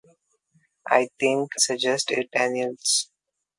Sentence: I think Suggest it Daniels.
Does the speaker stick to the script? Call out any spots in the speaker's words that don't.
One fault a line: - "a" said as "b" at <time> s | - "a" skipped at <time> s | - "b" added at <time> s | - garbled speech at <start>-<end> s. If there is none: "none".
none